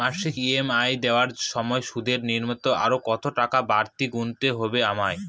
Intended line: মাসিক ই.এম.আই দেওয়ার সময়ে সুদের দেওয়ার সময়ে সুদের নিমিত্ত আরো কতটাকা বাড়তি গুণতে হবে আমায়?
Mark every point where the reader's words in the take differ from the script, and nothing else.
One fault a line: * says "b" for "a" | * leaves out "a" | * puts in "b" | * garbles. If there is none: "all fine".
* leaves out "দেওয়ার সময়ে সুদের"